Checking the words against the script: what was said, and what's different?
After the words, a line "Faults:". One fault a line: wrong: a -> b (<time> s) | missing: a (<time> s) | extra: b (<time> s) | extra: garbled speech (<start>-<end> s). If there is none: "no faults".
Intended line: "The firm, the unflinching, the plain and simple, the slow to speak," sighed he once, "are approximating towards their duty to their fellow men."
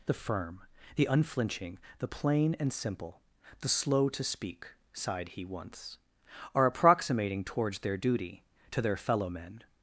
"The firm, the unflinching, the plain and simple, the slow to speak," sighed he once, "are approximating towards their duty to their fellow men."
Faults:
no faults